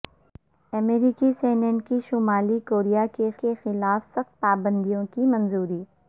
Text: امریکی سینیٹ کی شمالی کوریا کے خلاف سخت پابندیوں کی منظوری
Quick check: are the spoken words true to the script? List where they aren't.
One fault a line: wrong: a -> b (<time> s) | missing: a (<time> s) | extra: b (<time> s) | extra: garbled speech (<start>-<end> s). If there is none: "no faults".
extra: کے (3.4 s)